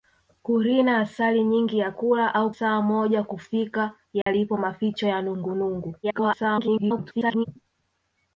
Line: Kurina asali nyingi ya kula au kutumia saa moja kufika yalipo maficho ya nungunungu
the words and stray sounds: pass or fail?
fail